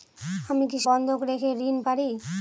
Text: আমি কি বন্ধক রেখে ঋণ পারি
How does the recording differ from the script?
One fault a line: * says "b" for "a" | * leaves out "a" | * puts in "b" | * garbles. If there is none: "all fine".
all fine